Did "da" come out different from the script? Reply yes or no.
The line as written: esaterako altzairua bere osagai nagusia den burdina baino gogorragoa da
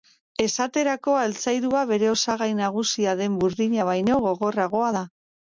no